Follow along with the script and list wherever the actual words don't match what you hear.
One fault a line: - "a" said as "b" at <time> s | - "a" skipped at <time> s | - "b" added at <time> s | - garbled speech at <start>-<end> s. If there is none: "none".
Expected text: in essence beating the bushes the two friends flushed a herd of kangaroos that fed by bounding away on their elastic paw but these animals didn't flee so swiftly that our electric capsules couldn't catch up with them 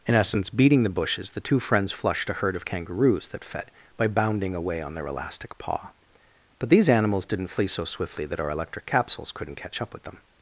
none